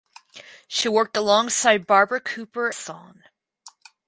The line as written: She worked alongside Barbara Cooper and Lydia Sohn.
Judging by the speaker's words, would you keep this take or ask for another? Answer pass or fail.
fail